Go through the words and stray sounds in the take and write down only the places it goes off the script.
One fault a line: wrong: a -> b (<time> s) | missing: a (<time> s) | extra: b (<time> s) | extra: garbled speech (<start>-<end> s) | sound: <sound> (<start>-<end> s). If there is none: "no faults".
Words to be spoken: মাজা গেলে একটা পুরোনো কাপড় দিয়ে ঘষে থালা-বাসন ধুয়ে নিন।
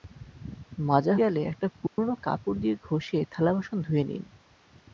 sound: dropout (1.9-2.0 s)